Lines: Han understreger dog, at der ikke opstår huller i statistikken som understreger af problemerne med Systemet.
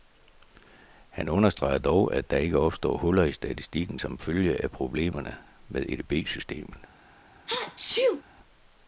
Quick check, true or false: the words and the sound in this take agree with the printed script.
false